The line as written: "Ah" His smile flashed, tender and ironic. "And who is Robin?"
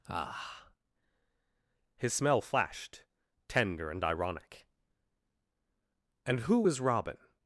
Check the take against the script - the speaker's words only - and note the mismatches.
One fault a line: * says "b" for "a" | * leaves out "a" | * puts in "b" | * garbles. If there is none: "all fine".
* says "smell" for "smile"